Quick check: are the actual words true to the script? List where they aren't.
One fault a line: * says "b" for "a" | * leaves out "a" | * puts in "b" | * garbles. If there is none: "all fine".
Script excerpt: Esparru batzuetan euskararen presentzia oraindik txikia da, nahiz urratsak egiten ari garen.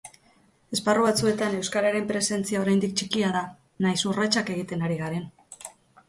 all fine